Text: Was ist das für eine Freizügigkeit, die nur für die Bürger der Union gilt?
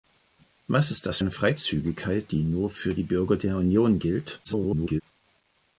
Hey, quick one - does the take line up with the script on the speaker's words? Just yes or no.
no